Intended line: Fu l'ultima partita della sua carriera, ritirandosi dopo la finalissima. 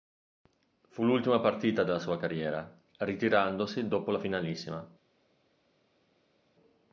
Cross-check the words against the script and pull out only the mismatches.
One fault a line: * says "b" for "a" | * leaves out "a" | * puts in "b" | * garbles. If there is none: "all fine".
all fine